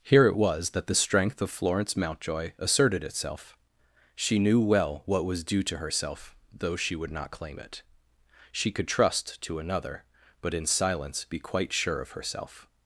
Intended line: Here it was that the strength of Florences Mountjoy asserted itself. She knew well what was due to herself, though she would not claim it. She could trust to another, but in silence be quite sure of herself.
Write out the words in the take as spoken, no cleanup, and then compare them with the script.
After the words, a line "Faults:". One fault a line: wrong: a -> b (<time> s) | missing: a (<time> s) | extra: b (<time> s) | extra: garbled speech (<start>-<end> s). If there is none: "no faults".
Here it was that the strength of Florence Mountjoy asserted itself. She knew well what was due to herself, though she would not claim it. She could trust to another, but in silence be quite sure of herself.
Faults:
wrong: Florences -> Florence (1.5 s)